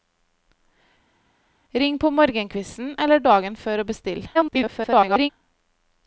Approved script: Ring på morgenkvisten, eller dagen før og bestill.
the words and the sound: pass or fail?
fail